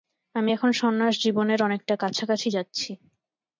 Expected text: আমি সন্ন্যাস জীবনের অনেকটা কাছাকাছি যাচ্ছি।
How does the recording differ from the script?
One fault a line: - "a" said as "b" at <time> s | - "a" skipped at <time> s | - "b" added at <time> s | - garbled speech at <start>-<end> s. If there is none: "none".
- "এখন" added at 0.5 s